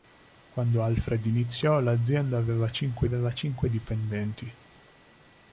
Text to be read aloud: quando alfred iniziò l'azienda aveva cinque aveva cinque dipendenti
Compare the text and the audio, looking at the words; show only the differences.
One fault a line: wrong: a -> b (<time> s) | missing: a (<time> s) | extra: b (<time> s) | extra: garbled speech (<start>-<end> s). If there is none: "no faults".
no faults